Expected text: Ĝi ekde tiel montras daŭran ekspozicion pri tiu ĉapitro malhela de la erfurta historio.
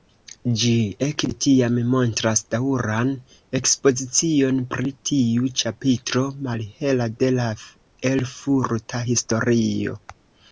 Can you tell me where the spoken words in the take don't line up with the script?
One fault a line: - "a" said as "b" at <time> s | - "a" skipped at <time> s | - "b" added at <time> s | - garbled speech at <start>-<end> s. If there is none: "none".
- "tiel" said as "tiam" at 1.4 s